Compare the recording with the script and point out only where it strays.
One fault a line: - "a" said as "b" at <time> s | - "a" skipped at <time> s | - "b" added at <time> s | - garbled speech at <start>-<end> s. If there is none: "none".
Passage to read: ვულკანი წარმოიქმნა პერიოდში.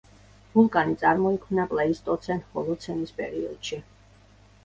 - "პლეისტოცენ ჰოლოცენის" added at 1.7 s